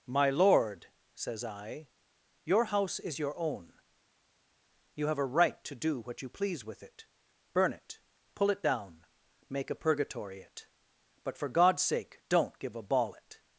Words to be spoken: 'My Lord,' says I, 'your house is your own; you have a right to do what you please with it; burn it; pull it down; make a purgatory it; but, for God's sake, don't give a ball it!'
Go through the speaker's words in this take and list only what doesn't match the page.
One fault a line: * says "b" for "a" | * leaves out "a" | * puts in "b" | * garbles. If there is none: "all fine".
all fine